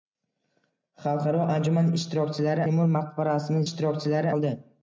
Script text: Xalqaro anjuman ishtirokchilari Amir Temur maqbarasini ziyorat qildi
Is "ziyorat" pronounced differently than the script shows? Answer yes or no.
yes